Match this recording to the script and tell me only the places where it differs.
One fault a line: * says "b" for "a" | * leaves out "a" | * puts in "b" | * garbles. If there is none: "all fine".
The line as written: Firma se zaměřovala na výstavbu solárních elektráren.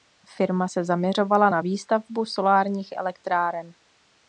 all fine